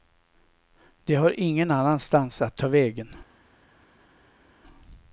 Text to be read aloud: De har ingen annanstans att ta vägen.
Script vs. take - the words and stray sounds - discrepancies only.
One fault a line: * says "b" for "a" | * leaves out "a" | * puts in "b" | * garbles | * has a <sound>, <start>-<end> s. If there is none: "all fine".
all fine